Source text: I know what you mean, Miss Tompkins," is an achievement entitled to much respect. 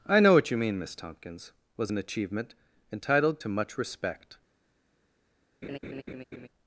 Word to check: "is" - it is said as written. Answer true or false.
false